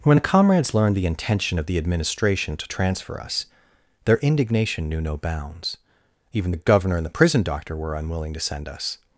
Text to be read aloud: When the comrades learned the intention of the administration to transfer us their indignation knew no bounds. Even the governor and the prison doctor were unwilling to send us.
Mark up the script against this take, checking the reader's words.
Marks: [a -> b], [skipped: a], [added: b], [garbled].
When the comrades learned the intention of the administration to transfer us their indignation knew no bounds. Even the governor and the prison doctor were unwilling to send us.